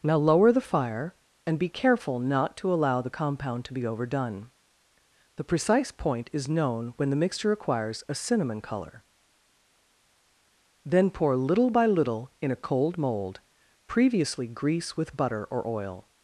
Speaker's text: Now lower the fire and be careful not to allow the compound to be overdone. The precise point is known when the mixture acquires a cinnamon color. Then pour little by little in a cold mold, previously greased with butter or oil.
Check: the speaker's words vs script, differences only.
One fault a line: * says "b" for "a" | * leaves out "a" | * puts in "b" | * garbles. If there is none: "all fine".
* says "grease" for "greased"